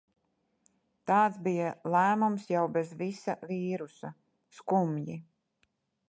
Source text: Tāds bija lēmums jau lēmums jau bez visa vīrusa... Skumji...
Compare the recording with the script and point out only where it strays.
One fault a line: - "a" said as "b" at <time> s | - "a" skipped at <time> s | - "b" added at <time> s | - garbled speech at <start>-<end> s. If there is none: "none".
- "lēmums jau" skipped at 2.6 s